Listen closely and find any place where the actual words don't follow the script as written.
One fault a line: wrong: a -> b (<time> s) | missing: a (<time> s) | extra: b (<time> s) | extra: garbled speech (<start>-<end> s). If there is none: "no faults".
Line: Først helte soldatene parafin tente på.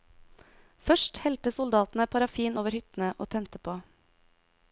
extra: over hyttene og (2.6 s)